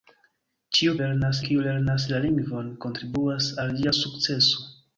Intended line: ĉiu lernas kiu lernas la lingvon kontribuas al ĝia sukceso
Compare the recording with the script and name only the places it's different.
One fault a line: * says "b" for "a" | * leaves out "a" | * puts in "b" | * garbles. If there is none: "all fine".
all fine